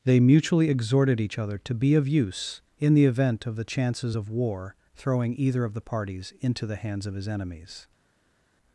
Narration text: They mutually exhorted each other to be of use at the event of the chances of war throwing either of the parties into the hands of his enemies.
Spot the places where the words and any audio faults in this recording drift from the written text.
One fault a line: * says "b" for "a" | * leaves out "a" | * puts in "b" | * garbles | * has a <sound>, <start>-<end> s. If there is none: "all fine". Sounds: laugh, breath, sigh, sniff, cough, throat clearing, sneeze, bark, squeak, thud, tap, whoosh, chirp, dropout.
* says "in" for "at"